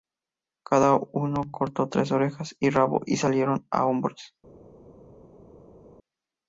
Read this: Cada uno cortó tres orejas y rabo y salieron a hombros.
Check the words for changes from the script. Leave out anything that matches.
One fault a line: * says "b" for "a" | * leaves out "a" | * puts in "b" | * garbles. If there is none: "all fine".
all fine